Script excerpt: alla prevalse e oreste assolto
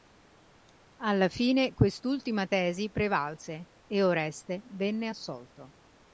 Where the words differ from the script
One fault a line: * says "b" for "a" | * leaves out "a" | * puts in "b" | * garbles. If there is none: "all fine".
* puts in "fine quest'ultima tesi"
* puts in "venne"